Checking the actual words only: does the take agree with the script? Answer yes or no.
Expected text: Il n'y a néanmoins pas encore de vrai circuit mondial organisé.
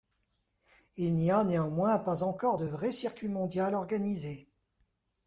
yes